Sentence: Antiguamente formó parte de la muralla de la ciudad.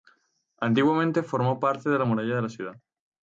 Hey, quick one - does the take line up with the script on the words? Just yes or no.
yes